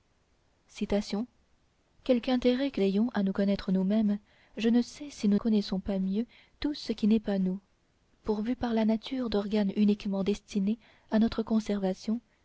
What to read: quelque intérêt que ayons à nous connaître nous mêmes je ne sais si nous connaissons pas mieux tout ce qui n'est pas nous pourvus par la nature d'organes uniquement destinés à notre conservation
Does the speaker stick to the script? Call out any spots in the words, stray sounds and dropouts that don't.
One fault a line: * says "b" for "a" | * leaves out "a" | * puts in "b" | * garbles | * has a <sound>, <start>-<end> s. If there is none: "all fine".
all fine